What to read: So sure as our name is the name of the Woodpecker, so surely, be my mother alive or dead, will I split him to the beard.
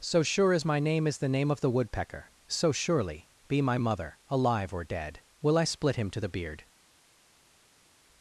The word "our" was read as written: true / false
false